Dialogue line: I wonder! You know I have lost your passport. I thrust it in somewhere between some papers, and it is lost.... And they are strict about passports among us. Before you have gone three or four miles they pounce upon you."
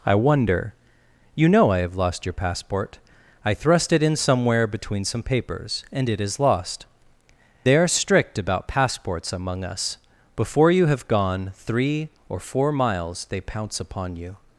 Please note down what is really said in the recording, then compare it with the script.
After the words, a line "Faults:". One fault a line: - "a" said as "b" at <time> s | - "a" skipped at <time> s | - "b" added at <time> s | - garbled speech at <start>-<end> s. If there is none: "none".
I wonder! You know I have lost your passport. I thrust it in somewhere between some papers, and it is lost.... They are strict about passports among us. Before you have gone three or four miles they pounce upon you."
Faults:
- "And" skipped at 6.9 s